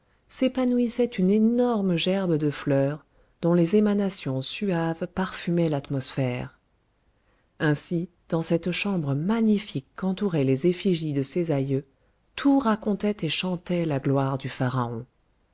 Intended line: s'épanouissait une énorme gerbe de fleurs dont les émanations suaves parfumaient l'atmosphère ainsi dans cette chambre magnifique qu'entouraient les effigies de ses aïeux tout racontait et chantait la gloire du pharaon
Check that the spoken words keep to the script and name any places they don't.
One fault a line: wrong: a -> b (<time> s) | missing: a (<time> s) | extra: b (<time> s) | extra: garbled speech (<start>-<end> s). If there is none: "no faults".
no faults